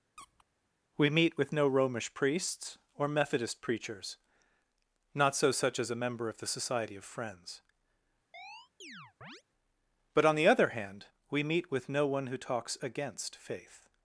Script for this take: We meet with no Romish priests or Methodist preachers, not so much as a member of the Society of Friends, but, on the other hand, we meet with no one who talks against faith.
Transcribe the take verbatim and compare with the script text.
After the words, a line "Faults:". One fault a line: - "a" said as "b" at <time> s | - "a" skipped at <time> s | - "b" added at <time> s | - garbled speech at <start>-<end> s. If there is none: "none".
We meet with no Romish priests or Methodist preachers, not so such as a member of the Society of Friends, but, on the other hand, we meet with no one who talks against faith.
Faults:
- "much" said as "such" at 5.5 s